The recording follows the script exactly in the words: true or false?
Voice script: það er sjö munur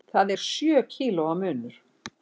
false